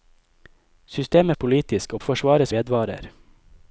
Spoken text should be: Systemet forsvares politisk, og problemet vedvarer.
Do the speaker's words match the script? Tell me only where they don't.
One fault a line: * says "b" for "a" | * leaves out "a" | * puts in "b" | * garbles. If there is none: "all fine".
* leaves out "forsvares"
* says "forsvares" for "problemet"